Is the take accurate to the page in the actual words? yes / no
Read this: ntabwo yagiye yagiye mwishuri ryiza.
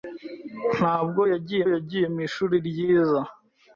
yes